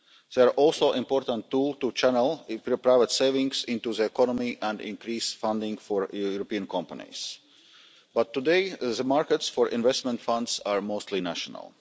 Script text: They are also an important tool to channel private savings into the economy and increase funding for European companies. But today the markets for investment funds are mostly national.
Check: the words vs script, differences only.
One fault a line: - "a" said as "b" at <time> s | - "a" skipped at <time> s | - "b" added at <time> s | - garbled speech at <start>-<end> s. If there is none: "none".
none